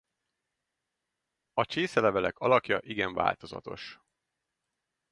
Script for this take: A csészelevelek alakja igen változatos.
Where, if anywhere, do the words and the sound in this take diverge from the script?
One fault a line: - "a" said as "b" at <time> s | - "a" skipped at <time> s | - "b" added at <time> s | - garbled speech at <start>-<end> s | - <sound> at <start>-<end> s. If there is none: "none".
none